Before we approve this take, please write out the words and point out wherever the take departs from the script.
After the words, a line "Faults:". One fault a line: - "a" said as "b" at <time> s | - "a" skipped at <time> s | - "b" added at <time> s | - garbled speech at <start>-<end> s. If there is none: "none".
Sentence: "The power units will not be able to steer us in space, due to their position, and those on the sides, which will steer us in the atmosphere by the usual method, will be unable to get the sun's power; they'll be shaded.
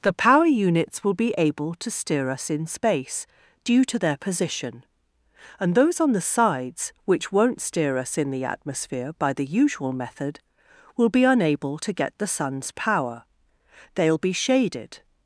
"The power units will be able to steer us in space, due to their position, and those on the sides, which won't steer us in the atmosphere by the usual method, will be unable to get the sun's power; they'll be shaded.
Faults:
- "not" skipped at 1.1 s
- "will" said as "won't" at 7.3 s